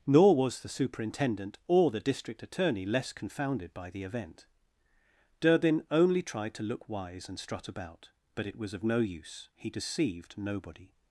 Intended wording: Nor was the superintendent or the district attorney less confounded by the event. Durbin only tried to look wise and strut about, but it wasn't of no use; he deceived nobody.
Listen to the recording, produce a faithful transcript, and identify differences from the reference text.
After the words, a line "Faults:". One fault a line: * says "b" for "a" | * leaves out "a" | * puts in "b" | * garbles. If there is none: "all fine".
Nor was the superintendent or the district attorney less confounded by the event. Durbin only tried to look wise and strut about, but it was of no use; he deceived nobody.
Faults:
* says "was" for "wasn't"